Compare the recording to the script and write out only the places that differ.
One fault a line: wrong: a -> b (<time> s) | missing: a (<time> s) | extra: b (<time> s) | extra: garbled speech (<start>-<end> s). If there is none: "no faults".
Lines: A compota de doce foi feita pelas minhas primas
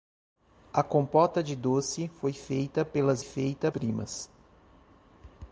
wrong: minhas -> feita (3.2 s)